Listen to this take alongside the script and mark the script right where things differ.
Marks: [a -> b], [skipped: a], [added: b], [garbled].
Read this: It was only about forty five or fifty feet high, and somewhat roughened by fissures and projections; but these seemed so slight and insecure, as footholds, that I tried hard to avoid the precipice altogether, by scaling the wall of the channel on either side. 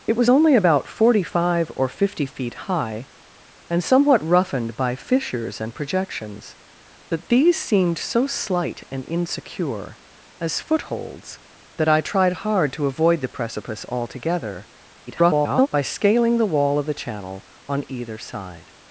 It was only about forty five or fifty feet high, and somewhat roughened by fissures and projections; but these seemed so slight and insecure, as footholds, that I tried hard to avoid the precipice altogether, [garbled] by scaling the wall of the channel on either side.